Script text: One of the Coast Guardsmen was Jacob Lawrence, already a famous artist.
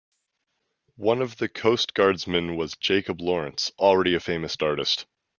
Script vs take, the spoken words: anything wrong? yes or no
no